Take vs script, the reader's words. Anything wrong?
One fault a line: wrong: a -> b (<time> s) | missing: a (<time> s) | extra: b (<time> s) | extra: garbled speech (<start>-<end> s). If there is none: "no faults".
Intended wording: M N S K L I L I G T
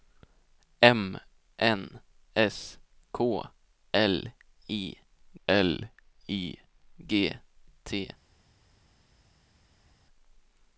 no faults